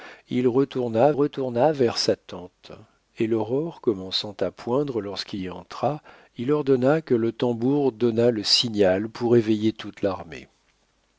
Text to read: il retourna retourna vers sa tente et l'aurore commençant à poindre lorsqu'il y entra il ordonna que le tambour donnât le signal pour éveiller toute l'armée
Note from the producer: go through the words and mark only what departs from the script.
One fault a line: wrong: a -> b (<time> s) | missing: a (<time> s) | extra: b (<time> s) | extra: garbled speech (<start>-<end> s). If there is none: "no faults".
no faults